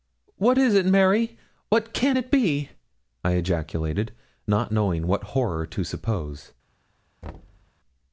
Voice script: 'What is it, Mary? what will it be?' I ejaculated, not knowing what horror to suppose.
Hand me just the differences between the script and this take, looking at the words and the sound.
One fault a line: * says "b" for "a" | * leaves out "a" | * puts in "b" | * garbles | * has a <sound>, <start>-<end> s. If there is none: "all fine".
* says "can" for "will"
* has a thud, 7.2-7.7 s